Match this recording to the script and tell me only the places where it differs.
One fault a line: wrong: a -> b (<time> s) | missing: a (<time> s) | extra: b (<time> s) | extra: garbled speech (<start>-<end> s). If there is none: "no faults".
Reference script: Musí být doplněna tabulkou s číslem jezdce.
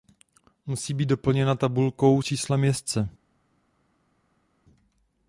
missing: s (2.2 s)